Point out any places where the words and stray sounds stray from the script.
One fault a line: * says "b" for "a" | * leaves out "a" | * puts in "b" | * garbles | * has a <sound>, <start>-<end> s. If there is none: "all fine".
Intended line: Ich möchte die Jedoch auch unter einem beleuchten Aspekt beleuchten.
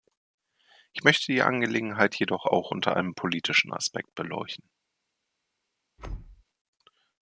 * puts in "Angelegenheit"
* says "politischen" for "beleuchten"
* has a thud, 6.0-6.4 s